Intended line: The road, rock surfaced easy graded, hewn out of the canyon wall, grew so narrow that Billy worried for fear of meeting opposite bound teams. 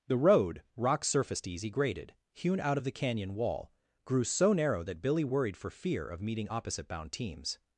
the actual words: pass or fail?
pass